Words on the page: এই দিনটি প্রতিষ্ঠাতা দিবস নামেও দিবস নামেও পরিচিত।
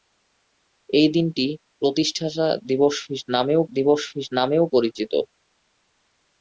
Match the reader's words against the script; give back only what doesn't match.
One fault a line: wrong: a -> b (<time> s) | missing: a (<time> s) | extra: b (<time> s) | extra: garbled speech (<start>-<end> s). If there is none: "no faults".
no faults